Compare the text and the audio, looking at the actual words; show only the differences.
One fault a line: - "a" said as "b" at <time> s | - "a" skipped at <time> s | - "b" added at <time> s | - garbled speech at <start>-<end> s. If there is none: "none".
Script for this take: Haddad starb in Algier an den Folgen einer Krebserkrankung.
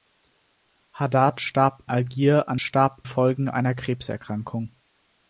- "in" skipped at 1.8 s
- "den" said as "starb" at 2.6 s